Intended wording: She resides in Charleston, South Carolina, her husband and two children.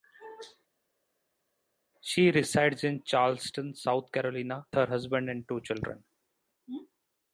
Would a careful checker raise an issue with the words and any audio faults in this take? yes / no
no